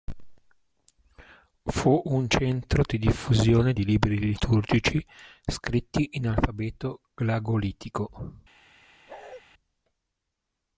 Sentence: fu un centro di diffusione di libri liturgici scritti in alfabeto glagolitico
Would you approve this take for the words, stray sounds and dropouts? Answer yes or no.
no